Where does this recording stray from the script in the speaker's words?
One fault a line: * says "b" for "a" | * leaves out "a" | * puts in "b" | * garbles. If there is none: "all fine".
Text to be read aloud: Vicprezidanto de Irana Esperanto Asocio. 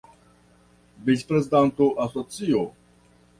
* leaves out "de Irana Esperanto"